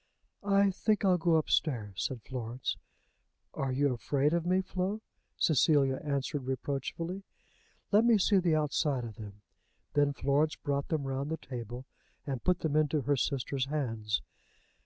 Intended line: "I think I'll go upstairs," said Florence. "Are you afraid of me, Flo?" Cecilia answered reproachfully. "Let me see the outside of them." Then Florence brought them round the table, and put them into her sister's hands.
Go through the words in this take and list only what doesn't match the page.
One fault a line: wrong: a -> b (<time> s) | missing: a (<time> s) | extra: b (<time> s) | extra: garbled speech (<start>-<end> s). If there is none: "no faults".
no faults